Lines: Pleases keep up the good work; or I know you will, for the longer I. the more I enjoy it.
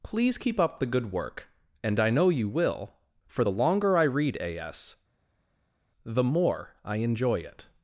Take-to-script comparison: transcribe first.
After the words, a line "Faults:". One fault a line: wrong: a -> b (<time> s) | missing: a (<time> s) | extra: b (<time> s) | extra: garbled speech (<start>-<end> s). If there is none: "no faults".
Please keep up the good work; and I know you will, for the longer I read A. S. the more I enjoy it.
Faults:
wrong: Pleases -> Please (0.0 s)
wrong: or -> and (1.8 s)
extra: read A S (4.0 s)